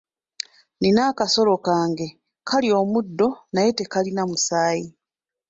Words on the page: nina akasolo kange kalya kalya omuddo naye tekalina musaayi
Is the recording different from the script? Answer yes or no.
yes